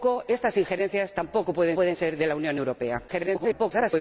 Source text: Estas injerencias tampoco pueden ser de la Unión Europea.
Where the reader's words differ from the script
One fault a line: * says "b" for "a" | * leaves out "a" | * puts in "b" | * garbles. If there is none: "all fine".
* puts in "pueden"
* garbles